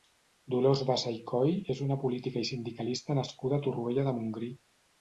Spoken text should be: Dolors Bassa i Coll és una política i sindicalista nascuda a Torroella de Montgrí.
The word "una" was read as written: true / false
true